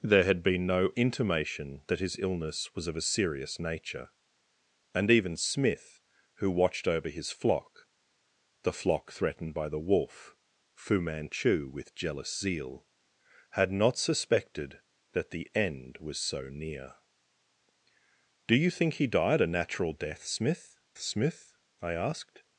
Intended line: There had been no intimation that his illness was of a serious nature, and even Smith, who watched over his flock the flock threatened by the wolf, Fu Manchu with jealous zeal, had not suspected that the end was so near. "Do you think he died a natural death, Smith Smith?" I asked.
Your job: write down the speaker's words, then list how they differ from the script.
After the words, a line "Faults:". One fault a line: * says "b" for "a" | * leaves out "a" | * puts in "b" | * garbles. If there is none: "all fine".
There had been no intimation that his illness was of a serious nature, and even Smith, who watched over his flock the flock threatened by the wolf, Fu Manchu with jealous zeal, had not suspected that the end was so near. "Do you think he died a natural death, Smith Smith?" I asked.
Faults:
all fine